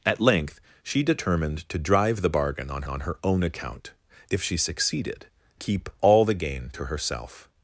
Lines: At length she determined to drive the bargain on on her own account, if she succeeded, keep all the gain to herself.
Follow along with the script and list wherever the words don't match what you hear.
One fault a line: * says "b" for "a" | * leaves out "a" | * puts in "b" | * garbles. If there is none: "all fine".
all fine